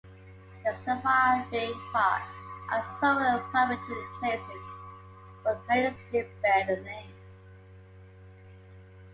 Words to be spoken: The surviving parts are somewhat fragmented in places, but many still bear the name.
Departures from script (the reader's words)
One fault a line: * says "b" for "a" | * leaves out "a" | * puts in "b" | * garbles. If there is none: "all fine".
all fine